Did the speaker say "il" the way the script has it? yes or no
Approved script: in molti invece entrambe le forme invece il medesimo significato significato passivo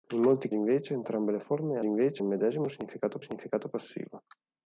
yes